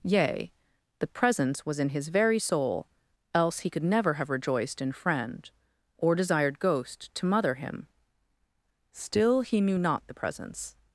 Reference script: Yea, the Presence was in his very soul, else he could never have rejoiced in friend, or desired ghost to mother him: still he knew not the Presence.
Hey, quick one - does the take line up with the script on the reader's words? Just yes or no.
yes